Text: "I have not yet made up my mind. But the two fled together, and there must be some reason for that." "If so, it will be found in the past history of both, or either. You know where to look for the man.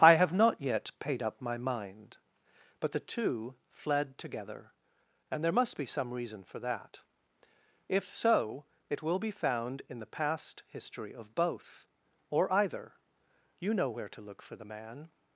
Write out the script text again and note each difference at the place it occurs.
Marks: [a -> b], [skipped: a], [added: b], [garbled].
"I have not yet [made -> paid] up my mind. But the two fled together, and there must be some reason for that." "If so, it will be found in the past history of both, or either. You know where to look for the man.